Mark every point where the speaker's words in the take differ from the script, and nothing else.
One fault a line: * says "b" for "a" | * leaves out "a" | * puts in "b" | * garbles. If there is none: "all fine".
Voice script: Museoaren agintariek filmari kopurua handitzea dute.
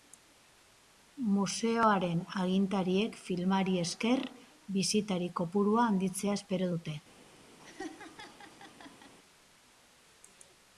* puts in "esker bisitari"
* puts in "espero"